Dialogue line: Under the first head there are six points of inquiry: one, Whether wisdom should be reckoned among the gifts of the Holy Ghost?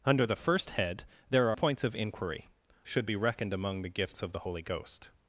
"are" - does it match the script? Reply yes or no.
no